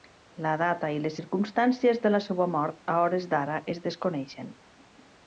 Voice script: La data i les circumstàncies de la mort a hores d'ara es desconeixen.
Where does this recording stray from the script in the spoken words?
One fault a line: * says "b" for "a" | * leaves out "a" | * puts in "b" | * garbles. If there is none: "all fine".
* puts in "seua"